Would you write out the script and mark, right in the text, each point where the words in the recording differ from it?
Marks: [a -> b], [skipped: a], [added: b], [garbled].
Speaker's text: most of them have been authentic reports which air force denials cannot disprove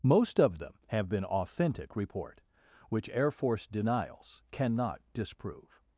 most of them have been authentic [reports -> report] which air force denials cannot disprove